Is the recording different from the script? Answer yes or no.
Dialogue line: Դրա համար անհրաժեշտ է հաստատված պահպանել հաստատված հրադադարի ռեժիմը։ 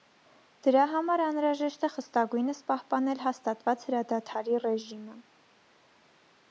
yes